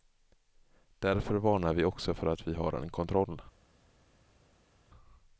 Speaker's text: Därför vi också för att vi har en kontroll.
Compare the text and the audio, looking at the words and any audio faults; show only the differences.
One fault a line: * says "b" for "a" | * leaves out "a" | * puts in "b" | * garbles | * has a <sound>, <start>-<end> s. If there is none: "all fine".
* puts in "varnar"